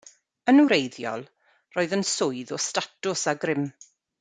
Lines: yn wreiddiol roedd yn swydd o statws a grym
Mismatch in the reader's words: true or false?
false